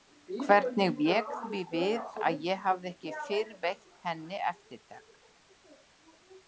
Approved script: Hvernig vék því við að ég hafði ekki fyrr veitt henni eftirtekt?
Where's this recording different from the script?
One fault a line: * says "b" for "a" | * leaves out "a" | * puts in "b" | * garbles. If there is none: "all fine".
all fine